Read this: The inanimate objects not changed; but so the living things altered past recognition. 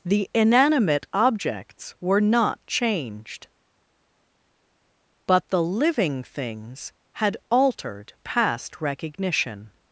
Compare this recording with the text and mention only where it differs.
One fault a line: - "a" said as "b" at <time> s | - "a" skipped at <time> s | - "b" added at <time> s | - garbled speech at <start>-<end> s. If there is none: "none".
- "were" added at 2.0 s
- "so" skipped at 5.5 s
- "had" added at 7.1 s